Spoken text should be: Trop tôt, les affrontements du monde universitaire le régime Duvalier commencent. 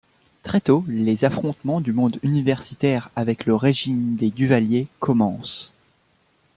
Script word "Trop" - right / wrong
wrong